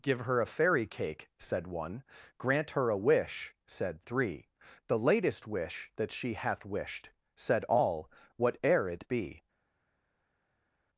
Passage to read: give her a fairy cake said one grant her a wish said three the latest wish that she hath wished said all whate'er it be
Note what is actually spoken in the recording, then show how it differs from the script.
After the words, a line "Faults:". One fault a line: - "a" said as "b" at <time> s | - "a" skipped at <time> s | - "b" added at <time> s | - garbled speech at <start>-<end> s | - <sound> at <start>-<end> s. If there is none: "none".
give her a fairy cake said one grant her a wish said three the latest wish that she hath wished said all whate'er it be
Faults:
none